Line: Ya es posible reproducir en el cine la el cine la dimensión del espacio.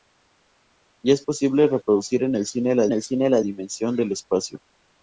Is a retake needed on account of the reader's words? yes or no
no